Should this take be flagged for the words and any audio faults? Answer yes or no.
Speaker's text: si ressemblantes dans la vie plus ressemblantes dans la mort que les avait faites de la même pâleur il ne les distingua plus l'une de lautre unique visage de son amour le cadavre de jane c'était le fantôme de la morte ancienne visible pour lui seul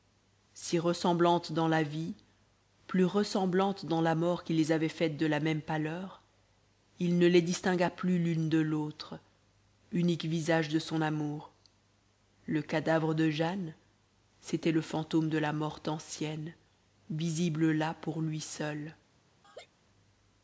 yes